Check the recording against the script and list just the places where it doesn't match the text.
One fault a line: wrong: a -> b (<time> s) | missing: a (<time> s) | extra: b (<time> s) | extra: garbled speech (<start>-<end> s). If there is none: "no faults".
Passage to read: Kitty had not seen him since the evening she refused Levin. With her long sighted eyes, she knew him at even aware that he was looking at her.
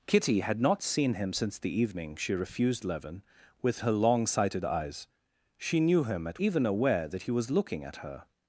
no faults